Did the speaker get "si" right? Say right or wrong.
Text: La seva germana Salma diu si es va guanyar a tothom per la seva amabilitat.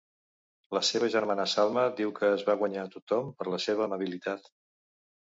wrong